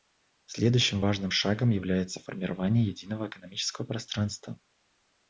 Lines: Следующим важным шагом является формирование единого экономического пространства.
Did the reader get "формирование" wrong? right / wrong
right